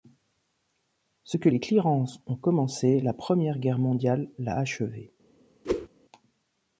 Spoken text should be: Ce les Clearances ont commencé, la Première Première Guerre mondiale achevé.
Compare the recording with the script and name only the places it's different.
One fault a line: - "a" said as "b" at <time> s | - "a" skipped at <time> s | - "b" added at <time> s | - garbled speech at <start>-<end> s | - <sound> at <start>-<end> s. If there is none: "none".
- "que" added at 1.3 s
- "Première" skipped at 3.6 s
- "l'a" added at 4.4 s
- whoosh at 5.6-5.9 s